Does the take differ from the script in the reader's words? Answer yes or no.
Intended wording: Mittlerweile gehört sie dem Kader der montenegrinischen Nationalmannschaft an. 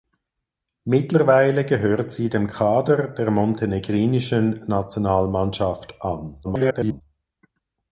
yes